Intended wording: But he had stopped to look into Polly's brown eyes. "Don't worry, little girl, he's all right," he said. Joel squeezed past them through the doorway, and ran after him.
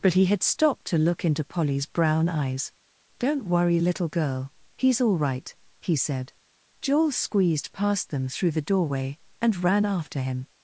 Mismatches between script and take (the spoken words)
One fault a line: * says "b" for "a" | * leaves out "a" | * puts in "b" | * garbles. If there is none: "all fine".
all fine